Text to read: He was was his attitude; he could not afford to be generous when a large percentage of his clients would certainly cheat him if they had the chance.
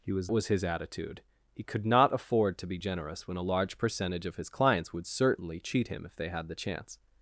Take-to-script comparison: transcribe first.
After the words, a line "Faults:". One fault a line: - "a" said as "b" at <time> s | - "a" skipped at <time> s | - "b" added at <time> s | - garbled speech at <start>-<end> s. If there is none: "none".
He was was his attitude; he could not afford to be generous when a large percentage of his clients would certainly cheat him if they had the chance.
Faults:
none